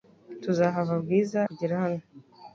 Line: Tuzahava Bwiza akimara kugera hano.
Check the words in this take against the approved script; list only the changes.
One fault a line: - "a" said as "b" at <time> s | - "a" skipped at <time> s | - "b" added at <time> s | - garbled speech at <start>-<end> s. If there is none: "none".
- "akimara" skipped at 1.4 s